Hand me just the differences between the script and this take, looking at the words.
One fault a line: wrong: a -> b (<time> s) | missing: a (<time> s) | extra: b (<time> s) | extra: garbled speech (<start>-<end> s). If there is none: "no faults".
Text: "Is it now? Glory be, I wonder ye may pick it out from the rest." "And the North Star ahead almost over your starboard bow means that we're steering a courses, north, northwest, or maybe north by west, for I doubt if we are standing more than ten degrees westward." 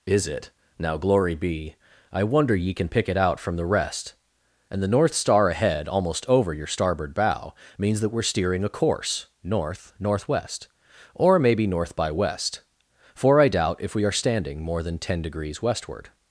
wrong: may -> can (2.7 s)
wrong: courses -> course (8.7 s)